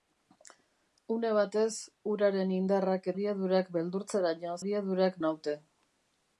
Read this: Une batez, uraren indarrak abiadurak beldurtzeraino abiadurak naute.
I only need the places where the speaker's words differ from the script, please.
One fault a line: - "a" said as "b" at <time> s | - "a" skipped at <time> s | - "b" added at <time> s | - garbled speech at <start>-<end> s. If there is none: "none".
none